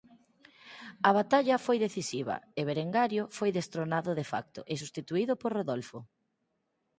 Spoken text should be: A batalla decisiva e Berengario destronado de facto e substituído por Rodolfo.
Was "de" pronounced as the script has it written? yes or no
yes